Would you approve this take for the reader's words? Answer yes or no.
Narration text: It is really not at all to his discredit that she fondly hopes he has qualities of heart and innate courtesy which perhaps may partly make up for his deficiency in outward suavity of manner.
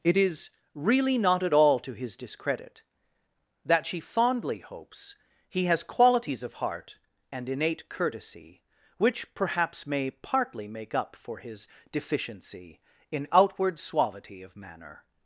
yes